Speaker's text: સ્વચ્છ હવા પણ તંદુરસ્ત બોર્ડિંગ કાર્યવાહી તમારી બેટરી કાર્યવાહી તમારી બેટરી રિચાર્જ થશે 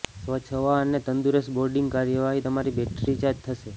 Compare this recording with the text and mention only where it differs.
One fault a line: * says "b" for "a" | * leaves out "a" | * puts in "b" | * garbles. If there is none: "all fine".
* says "અને" for "પણ"
* leaves out "કાર્યવાહી તમારી બેટરી"